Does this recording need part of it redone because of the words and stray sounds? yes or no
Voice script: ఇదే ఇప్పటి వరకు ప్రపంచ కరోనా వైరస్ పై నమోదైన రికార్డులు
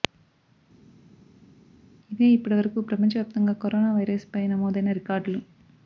yes